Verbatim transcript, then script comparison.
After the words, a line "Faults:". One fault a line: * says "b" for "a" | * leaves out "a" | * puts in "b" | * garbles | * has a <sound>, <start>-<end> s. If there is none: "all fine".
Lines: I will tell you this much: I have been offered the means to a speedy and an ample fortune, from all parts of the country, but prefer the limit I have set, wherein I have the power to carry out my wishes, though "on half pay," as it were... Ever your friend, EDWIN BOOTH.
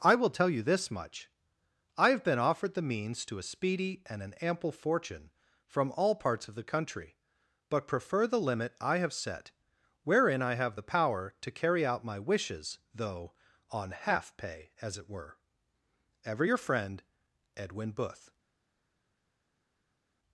I will tell you this much: I have been offered the means to a speedy and an ample fortune, from all parts of the country, but prefer the limit I have set, wherein I have the power to carry out my wishes, though "on half pay," as it were... Ever your friend, EDWIN BOOTH.
Faults:
all fine